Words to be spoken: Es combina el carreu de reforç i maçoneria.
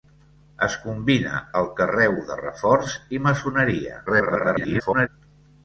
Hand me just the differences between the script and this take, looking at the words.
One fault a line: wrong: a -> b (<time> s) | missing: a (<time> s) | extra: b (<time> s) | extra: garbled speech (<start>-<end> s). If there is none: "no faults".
extra: garbled speech (4.1-5.1 s)